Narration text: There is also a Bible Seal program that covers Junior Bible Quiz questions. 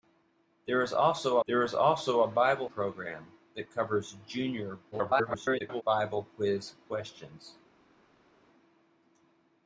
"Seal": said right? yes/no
no